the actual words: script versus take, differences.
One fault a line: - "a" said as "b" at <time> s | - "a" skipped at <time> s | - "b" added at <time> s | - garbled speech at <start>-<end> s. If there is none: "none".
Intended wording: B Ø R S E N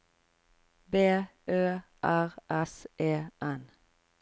none